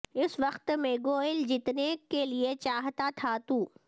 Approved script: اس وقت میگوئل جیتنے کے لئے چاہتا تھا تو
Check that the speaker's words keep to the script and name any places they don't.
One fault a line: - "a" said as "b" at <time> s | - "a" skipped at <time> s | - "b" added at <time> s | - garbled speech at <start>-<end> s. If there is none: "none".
none